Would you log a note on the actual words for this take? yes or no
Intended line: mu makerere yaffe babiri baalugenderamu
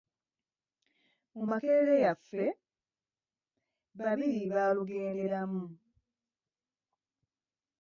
no